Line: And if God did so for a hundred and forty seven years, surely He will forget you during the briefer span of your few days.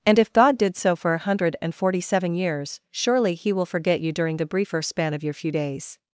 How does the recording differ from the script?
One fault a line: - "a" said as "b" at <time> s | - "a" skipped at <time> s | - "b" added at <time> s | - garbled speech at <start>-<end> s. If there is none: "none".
none